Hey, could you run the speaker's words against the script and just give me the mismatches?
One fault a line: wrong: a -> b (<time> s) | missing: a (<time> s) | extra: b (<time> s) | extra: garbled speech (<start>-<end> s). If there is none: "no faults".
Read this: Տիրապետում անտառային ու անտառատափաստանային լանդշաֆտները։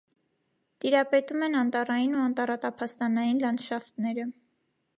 extra: են (1.5 s)